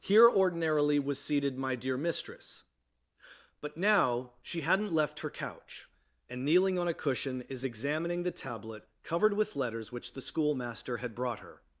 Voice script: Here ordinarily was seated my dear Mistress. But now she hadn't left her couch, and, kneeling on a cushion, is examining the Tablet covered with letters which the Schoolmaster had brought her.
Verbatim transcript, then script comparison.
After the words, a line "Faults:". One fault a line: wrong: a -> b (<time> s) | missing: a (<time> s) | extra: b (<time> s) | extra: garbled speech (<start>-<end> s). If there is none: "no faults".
Here ordinarily was seated my dear Mistress. But now she hadn't left her couch, and, kneeling on a cushion, is examining the Tablet covered with letters which the Schoolmaster had brought her.
Faults:
no faults